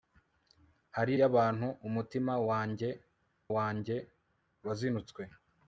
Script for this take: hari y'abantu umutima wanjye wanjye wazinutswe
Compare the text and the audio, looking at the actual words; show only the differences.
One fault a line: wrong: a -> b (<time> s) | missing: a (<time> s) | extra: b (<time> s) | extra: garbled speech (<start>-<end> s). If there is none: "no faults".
no faults